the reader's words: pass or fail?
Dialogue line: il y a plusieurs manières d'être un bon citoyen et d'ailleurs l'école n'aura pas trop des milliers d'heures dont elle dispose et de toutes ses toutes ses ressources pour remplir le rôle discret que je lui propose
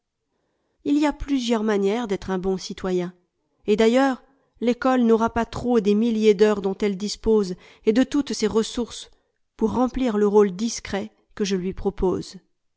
fail